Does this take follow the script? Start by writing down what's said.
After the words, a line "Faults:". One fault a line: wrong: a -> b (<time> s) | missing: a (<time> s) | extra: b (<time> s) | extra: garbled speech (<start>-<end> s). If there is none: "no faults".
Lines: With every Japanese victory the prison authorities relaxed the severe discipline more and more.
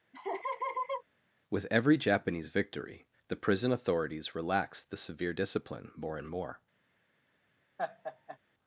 With every Japanese victory the prison authorities relaxed the severe discipline more and more.
Faults:
no faults